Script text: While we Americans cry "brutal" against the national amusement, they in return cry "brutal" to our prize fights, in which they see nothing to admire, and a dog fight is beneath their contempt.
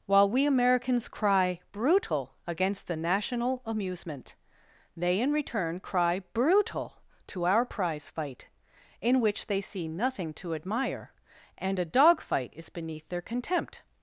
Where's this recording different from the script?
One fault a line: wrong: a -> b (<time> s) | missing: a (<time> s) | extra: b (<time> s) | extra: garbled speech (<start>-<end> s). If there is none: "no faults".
wrong: fights -> fight (8.1 s)